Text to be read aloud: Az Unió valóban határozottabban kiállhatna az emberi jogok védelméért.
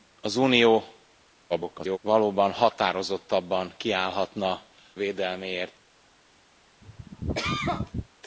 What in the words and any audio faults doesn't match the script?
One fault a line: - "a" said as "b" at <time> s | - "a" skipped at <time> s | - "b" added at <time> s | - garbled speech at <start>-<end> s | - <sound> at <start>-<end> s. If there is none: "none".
- garbled speech at 1.5-2.0 s
- "az emberi jogok" skipped at 4.6 s
- cough at 6.8-8.1 s